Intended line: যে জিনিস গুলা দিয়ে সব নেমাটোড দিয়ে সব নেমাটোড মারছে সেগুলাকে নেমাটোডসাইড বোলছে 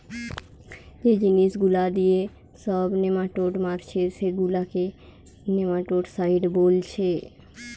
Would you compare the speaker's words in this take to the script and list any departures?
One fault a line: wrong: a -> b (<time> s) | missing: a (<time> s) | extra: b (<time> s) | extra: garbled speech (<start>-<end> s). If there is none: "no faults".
missing: দিয়ে সব নেমাটোড (3.5 s)